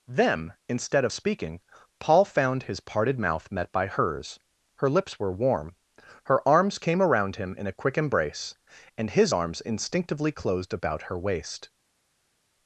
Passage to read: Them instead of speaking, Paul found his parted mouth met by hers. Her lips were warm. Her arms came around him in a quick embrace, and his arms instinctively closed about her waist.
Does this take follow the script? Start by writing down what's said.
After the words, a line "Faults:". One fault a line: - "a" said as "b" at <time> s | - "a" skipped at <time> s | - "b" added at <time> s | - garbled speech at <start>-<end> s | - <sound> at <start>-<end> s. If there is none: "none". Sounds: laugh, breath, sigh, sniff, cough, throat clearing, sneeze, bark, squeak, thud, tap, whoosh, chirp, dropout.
Them instead of speaking, Paul found his parted mouth met by hers. Her lips were warm. Her arms came around him in a quick embrace, and his arms instinctively closed about her waist.
Faults:
none